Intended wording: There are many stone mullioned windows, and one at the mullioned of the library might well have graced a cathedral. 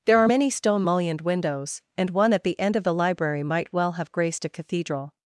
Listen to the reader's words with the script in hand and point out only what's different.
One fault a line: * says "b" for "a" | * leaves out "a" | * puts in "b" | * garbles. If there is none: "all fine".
* says "end" for "mullioned"